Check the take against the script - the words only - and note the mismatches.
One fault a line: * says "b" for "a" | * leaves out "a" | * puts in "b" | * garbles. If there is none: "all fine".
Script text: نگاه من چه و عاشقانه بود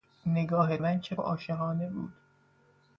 all fine